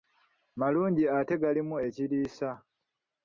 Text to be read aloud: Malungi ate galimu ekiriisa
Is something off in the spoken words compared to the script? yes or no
no